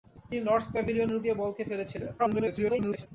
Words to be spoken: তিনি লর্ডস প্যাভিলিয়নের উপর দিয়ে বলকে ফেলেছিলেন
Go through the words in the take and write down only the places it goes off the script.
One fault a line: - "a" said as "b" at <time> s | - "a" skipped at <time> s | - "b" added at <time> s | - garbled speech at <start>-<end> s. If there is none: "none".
- "উপর" skipped at 1.2 s
- garbled speech at 2.2-3.1 s